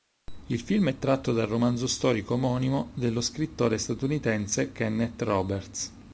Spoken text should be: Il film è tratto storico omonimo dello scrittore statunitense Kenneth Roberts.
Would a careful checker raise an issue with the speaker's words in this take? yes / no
yes